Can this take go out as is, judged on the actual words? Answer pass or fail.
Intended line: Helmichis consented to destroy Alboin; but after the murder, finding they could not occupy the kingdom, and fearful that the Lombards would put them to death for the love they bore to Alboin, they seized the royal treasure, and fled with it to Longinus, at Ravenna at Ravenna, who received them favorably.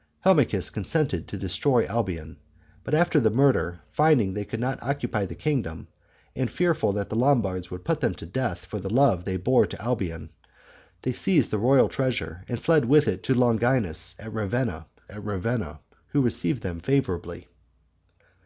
pass